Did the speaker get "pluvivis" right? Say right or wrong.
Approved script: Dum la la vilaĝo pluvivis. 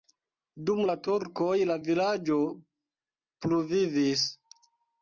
right